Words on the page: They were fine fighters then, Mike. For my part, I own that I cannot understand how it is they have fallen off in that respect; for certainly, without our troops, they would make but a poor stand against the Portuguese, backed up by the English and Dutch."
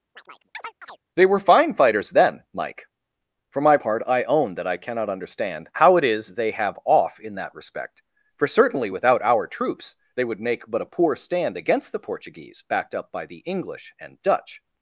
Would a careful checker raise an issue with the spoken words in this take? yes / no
yes